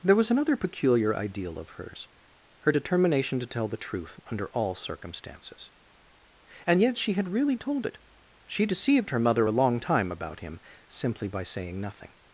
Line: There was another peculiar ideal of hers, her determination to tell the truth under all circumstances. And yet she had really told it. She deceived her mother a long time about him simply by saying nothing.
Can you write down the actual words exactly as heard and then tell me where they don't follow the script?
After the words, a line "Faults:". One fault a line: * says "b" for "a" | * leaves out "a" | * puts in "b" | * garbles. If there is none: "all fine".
There was another peculiar ideal of hers, her determination to tell the truth under all circumstances. And yet she had really told it. She deceived her mother a long time about him simply by saying nothing.
Faults:
all fine